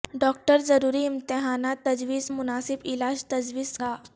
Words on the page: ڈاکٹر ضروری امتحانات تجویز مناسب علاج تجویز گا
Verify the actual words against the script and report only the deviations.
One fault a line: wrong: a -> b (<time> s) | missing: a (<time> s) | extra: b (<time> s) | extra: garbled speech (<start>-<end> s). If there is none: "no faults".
no faults